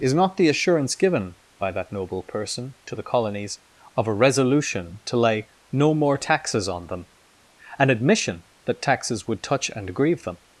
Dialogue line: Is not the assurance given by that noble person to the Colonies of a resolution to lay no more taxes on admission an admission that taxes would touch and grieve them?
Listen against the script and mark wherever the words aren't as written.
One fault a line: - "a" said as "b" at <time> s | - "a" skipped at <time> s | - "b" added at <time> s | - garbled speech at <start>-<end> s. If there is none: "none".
- "admission" said as "them" at 6.9 s